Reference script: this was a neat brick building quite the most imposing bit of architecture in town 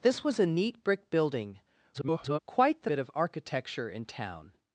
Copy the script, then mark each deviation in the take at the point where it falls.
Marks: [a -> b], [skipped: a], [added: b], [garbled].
this was a neat brick building [garbled] quite the [skipped: most imposing] bit of architecture in town